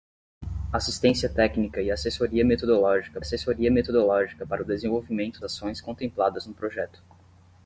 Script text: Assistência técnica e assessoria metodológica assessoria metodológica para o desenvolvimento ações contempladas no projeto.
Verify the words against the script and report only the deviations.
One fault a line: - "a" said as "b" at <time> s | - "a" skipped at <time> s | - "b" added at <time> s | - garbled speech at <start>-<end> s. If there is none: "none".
none